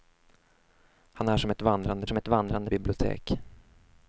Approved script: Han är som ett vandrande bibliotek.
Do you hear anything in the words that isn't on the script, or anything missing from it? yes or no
yes